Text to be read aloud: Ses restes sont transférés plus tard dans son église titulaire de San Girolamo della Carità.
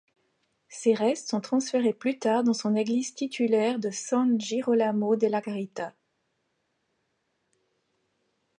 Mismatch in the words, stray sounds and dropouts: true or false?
false